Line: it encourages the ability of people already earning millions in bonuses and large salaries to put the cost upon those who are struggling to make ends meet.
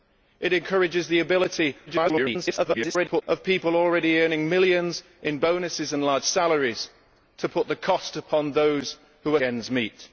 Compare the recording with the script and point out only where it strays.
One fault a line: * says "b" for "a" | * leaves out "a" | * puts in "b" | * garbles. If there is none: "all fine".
* garbles
* leaves out "struggling to make"